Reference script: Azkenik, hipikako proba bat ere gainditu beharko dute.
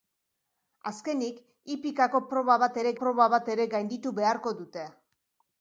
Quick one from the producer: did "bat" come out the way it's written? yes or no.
yes